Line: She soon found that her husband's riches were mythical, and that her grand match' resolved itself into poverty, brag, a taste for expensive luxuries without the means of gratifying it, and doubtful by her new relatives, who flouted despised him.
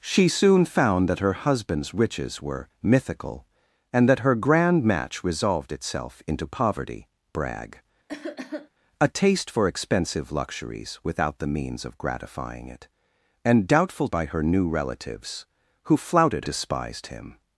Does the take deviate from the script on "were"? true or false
false